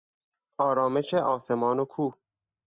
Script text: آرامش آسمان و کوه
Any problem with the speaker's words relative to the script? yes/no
no